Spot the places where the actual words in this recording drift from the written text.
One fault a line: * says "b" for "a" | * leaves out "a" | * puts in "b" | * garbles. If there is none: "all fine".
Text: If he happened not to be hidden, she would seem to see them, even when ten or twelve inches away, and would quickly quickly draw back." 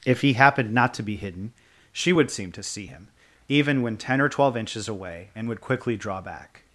* says "him" for "them"
* leaves out "quickly"